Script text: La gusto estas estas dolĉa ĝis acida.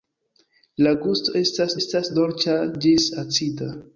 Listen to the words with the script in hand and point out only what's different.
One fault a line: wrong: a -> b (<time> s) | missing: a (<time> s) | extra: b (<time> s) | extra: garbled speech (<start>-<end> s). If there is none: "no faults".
no faults